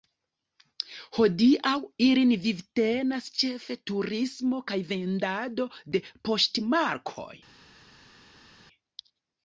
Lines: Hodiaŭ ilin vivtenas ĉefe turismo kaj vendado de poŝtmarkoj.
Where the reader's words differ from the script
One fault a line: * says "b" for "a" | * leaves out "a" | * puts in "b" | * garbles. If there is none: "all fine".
all fine